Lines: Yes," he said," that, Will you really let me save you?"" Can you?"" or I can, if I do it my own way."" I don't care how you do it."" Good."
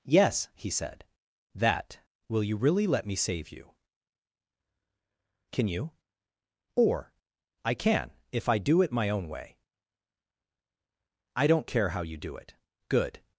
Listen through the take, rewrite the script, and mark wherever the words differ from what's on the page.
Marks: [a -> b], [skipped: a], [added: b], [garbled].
Yes," he said," that, Will you really let me save you?"" Can you?"" or I can, if I do it my own way."" I don't care how you do it."" Good."